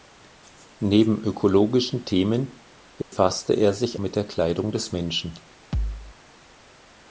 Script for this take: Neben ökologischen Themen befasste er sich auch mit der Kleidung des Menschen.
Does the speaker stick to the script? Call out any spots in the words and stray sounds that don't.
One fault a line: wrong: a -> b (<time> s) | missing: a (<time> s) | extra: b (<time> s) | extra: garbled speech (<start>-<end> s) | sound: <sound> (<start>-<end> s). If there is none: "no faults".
sound: dropout (3.0-3.1 s)
missing: auch (4.0 s)
sound: thud (5.7-6.2 s)